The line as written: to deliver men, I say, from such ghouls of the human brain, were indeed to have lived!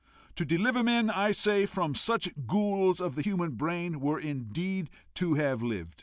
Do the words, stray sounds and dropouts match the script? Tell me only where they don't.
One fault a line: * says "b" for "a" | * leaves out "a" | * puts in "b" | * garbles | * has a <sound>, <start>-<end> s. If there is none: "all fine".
all fine